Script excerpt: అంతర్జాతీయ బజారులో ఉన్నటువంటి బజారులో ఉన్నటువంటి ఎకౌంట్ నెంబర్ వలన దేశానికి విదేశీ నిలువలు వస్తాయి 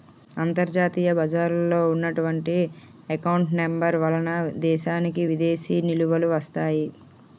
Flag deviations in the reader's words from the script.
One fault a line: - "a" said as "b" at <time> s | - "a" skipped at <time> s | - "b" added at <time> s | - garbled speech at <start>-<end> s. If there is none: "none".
- "బజారులో ఉన్నటువంటి" skipped at 2.5 s